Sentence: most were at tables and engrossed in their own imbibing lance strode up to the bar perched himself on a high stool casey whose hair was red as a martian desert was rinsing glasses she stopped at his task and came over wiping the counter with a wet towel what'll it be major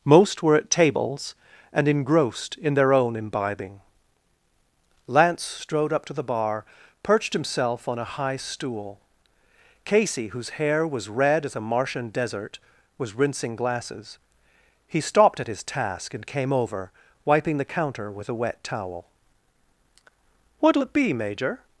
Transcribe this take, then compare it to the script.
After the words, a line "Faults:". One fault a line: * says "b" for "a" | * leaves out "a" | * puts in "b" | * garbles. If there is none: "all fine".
most were at tables and engrossed in their own imbibing lance strode up to the bar perched himself on a high stool casey whose hair was red as a martian desert was rinsing glasses he stopped at his task and came over wiping the counter with a wet towel what'll it be major
Faults:
* says "he" for "she"